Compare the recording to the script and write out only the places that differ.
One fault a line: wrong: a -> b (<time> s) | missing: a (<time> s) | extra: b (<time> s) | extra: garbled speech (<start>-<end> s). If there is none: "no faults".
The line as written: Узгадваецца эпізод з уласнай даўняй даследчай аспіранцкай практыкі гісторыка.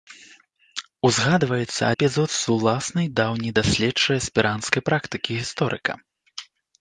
no faults